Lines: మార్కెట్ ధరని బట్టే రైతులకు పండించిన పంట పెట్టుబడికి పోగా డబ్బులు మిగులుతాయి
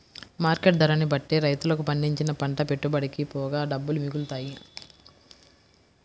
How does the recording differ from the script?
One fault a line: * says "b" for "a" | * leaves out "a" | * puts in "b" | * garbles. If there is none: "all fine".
all fine